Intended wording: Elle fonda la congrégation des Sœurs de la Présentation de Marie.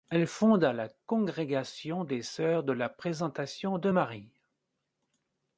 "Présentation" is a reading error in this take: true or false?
false